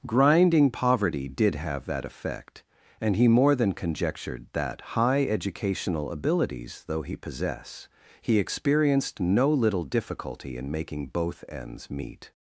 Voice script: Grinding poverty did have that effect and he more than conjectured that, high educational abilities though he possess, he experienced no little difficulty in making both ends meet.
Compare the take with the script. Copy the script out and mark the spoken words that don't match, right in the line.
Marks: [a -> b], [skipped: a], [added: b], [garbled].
Grinding poverty did have that effect and he more than conjectured that, high educational abilities though he possess, he experienced no little difficulty in making both ends meet.